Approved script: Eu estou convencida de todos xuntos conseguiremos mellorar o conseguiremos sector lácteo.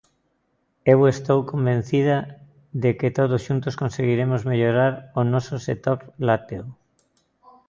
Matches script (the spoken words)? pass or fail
fail